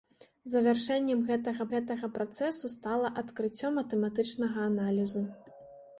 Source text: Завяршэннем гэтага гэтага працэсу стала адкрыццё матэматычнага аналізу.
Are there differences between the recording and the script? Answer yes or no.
no